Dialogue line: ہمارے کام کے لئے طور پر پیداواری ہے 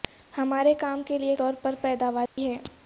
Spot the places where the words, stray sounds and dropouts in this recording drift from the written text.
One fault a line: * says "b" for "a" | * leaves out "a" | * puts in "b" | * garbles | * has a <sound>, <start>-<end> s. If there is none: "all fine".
* has a dropout, 2.3-2.4 s